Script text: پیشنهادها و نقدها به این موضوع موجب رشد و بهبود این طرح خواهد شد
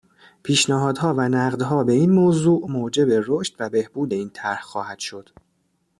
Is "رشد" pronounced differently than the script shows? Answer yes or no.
no